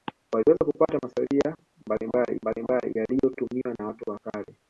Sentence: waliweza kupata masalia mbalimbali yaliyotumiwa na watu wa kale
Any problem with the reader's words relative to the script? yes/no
yes